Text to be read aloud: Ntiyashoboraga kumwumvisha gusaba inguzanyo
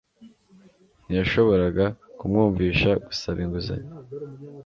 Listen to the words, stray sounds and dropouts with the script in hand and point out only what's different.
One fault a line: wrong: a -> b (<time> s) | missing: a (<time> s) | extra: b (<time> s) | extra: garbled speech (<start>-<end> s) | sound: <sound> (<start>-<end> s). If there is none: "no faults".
no faults